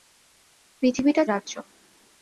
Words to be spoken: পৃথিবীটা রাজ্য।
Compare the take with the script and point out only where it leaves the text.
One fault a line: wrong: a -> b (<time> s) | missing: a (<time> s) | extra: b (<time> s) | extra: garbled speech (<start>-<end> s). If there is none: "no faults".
no faults